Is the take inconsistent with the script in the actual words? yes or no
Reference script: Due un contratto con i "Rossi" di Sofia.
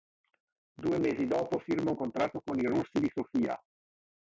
yes